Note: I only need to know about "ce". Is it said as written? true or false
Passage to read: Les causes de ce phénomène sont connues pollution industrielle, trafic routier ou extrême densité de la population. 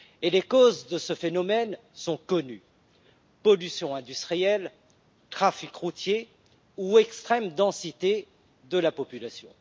true